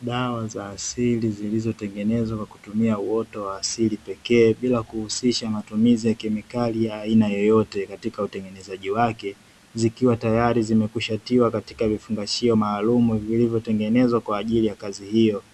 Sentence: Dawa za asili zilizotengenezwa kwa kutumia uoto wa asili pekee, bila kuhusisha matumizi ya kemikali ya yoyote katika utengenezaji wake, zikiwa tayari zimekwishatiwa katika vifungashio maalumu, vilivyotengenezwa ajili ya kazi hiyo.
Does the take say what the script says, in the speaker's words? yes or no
no